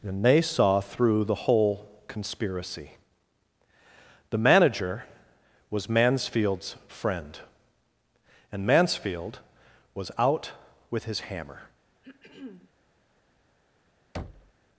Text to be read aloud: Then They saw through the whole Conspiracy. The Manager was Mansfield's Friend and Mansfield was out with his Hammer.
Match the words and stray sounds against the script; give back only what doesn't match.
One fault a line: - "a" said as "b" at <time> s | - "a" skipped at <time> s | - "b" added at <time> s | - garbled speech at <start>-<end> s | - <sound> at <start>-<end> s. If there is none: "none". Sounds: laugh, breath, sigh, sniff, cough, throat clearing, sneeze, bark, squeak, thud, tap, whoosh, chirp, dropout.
- "Then" said as "And" at 0.0 s
- throat clearing at 12.0-12.7 s
- thud at 14.1-14.5 s